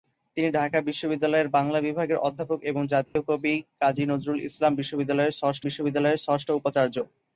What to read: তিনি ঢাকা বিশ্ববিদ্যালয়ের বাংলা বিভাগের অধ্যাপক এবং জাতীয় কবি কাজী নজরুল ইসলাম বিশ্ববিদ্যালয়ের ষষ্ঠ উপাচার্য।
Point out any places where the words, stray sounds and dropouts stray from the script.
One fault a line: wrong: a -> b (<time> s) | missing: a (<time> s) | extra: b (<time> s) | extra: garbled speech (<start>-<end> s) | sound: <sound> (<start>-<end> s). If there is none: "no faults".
sound: dropout (3.1-3.2 s)
extra: বিশ্ববিদ্যালয়ের ষষ্ঠ (5.6 s)